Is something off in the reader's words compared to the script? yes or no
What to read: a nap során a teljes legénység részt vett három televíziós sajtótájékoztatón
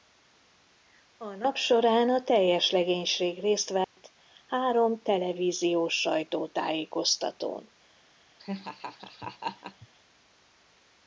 no